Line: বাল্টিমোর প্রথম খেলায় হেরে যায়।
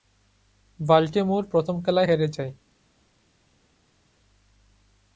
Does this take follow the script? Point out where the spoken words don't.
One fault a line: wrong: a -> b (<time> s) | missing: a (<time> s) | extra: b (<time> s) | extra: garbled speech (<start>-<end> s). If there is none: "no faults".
no faults